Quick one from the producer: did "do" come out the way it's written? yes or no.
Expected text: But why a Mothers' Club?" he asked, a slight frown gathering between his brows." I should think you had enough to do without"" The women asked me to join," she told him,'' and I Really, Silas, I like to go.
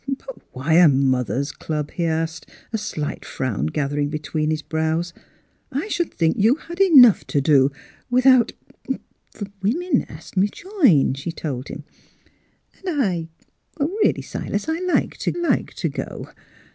yes